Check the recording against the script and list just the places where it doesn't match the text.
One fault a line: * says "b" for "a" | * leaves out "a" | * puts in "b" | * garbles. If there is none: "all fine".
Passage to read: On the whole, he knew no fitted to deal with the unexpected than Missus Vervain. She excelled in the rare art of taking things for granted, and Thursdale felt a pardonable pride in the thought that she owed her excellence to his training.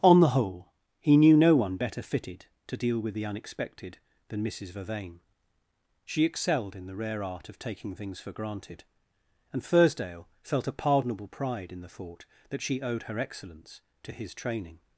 * puts in "one better"